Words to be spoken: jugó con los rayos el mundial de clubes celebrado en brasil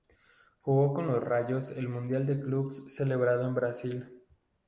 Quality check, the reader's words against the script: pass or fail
pass